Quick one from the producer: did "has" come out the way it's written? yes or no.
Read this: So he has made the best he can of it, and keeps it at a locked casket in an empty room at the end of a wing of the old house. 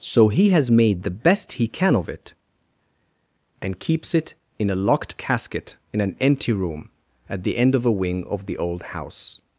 yes